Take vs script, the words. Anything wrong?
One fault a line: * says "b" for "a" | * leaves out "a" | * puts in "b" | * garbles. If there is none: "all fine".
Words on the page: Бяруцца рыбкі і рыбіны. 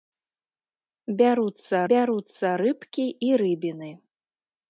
* puts in "бяруцца"